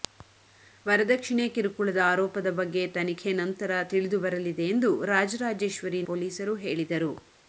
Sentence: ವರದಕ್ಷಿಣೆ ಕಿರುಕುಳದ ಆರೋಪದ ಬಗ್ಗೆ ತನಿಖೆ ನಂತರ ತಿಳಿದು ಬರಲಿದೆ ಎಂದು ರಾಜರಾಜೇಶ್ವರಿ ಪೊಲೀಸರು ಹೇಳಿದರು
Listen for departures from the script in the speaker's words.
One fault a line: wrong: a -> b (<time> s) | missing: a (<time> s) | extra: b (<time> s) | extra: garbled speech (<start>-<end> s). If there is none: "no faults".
no faults